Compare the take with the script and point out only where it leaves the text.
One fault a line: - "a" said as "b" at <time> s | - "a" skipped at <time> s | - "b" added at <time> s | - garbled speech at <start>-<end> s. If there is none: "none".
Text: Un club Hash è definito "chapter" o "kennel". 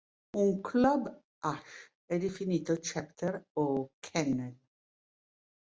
none